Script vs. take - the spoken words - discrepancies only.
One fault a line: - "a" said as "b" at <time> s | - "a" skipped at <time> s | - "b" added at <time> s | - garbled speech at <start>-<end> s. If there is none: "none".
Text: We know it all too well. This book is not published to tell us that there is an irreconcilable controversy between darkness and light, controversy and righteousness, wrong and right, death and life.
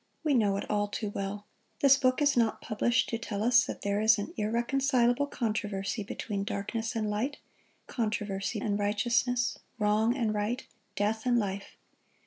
none